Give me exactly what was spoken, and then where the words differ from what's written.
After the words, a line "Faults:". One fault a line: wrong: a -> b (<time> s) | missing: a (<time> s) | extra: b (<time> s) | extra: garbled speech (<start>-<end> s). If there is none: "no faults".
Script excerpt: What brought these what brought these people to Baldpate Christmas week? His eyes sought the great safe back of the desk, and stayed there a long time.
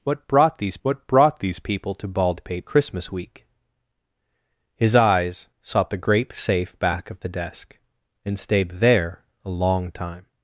What brought these what brought these people to Baldpate Christmas week? His eyes sought the great safe back of the desk, and stayed there a long time.
Faults:
no faults